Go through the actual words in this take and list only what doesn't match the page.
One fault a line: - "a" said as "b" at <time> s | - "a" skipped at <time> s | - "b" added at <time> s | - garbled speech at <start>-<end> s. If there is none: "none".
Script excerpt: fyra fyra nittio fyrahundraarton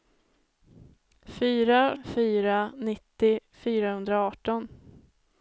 none